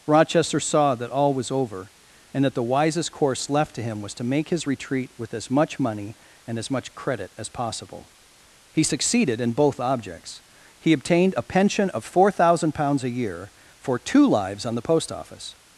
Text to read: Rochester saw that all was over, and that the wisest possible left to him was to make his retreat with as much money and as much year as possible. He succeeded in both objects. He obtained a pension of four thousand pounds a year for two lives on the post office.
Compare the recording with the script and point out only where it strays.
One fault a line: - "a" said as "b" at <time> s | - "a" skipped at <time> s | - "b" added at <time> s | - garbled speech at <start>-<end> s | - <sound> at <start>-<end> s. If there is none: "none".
- "possible" said as "course" at 3.1 s
- "year" said as "credit" at 6.9 s